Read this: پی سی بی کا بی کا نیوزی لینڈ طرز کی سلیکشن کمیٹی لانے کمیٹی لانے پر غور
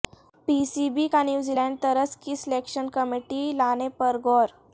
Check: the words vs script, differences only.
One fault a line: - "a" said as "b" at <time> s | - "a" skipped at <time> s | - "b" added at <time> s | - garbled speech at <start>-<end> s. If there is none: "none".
- "بی کا" skipped at 1.2 s
- "کمیٹی لانے" skipped at 3.9 s